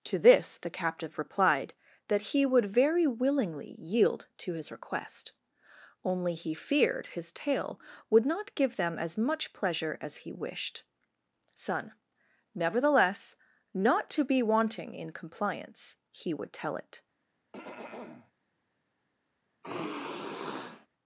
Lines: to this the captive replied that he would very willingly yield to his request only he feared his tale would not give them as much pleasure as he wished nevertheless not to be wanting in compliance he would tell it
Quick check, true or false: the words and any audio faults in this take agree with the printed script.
false